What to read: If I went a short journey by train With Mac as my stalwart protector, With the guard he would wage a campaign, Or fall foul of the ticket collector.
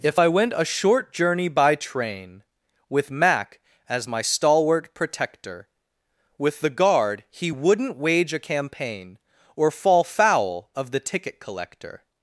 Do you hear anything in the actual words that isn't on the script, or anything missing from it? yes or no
yes